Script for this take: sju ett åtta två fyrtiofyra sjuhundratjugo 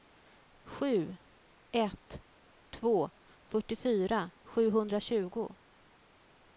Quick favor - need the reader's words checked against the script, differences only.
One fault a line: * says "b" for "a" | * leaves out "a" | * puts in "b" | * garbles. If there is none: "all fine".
* leaves out "åtta"